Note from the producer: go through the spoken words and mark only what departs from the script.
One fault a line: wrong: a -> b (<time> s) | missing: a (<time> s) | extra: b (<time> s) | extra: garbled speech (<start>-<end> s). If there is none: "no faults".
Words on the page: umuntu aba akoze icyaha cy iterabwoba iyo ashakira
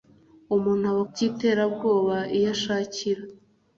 missing: akoze icyaha (1.0 s)